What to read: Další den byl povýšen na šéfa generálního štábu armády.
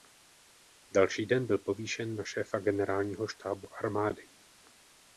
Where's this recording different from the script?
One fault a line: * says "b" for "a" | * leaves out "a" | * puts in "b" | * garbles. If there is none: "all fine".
all fine